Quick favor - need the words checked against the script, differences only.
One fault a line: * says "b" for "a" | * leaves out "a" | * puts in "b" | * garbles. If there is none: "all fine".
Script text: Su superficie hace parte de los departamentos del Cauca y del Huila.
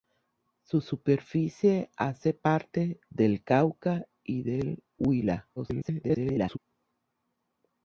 * leaves out "de los departamentos"
* garbles